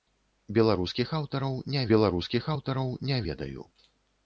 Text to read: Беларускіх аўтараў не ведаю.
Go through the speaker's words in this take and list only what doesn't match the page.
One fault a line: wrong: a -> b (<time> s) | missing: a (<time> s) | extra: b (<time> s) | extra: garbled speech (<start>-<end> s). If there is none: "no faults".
extra: беларускіх аўтараў не (1.9 s)